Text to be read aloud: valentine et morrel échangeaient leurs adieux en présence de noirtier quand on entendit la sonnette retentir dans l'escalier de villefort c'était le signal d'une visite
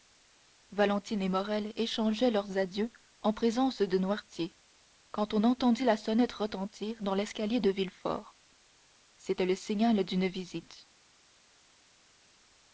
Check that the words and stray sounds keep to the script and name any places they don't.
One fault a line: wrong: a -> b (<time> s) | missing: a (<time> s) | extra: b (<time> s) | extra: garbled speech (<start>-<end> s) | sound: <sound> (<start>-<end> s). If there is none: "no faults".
no faults